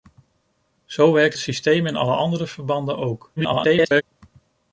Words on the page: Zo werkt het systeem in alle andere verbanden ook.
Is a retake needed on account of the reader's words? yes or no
yes